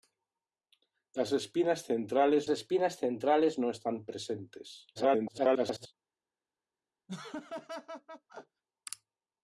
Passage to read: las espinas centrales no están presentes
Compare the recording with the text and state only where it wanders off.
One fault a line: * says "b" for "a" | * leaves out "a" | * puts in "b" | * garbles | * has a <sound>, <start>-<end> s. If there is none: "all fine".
* puts in "espinas centrales"
* garbles
* has a laugh, 7.1-8.6 s